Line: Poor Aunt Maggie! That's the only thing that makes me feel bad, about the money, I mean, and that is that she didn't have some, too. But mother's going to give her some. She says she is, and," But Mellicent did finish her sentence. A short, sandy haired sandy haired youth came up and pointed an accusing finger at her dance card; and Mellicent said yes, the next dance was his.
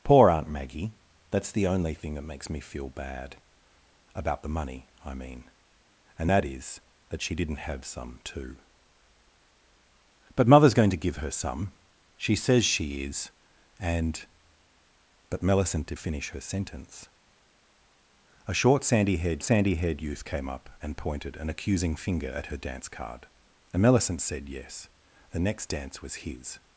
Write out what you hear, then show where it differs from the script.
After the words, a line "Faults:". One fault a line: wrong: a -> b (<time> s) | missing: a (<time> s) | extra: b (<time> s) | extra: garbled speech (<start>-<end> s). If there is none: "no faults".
Poor Aunt Maggie! That's the only thing that makes me feel bad, about the money, I mean, and that is that she didn't have some, too. But mother's going to give her some. She says she is, and," But Mellicent did finish her sentence. A short, sandy haired sandy haired youth came up and pointed an accusing finger at her dance card; and Mellicent said yes, the next dance was his.
Faults:
no faults